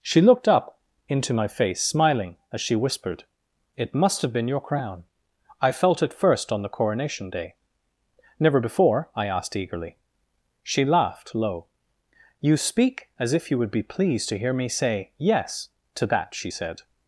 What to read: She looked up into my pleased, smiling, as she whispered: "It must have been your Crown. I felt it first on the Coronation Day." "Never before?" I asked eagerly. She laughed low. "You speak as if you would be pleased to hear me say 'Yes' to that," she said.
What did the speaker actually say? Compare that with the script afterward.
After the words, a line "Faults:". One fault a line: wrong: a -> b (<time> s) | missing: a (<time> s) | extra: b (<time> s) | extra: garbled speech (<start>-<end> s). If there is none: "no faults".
She looked up into my face, smiling, as she whispered: "It must have been your Crown. I felt it first on the Coronation Day." "Never before?" I asked eagerly. She laughed low. "You speak as if you would be pleased to hear me say 'Yes' to that," she said.
Faults:
wrong: pleased -> face (1.5 s)